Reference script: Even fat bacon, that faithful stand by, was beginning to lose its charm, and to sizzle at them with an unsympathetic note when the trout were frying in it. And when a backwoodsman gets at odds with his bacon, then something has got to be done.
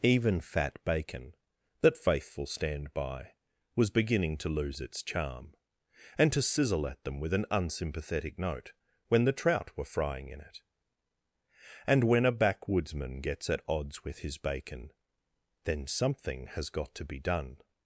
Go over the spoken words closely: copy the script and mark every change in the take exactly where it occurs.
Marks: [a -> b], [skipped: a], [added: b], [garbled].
Even fat bacon, that faithful stand by, was beginning to lose its charm, and to sizzle at them with an unsympathetic note when the trout were frying in it. And when a backwoodsman gets at odds with his bacon, then something has got to be done.